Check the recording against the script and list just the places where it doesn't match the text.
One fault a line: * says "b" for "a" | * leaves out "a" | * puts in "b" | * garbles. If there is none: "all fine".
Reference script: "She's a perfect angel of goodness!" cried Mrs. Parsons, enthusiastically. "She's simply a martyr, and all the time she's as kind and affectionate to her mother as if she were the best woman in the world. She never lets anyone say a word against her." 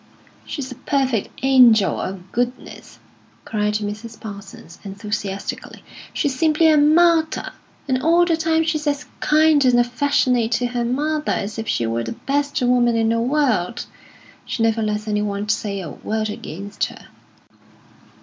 all fine